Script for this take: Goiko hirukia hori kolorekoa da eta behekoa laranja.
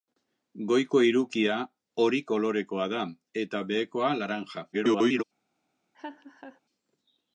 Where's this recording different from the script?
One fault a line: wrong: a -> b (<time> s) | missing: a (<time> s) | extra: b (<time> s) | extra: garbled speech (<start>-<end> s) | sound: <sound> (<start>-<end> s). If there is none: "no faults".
extra: garbled speech (4.7-5.2 s)
sound: laugh (5.9-6.6 s)